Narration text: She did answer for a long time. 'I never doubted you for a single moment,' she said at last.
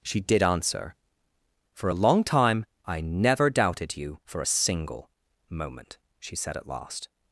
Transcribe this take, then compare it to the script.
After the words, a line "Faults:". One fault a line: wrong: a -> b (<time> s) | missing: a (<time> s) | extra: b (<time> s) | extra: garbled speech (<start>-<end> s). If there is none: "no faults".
She did answer for a long time. 'I never doubted you for a single moment,' she said at last.
Faults:
no faults